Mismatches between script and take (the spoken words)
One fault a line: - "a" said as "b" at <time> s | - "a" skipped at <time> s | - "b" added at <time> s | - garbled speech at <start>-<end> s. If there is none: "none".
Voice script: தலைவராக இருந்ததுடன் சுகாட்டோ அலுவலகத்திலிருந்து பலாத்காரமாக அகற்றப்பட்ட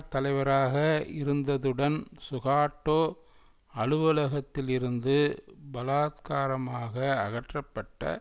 none